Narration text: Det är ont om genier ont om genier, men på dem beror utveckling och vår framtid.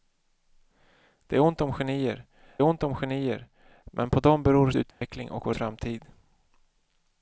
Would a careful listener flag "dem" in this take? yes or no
no